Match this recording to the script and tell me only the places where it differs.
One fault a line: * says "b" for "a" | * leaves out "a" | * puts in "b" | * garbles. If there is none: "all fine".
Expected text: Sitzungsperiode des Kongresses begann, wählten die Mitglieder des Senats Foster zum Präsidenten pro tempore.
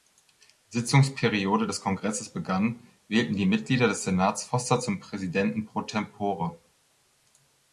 all fine